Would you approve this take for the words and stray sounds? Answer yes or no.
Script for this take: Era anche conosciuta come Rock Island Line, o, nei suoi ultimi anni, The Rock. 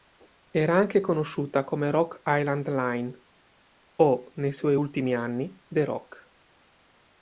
yes